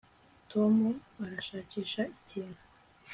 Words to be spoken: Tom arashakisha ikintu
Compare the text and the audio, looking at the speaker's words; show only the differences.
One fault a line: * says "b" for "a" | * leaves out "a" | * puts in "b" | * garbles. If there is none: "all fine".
all fine